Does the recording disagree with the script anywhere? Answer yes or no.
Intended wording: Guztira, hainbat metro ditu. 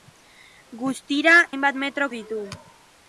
no